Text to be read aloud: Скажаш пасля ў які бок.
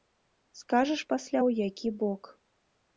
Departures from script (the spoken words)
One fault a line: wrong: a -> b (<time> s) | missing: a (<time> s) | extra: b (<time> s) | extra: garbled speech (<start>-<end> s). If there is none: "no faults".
no faults